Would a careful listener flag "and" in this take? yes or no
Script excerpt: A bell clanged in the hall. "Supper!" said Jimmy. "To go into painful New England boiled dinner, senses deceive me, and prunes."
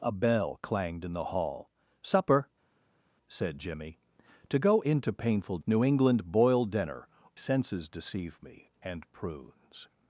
no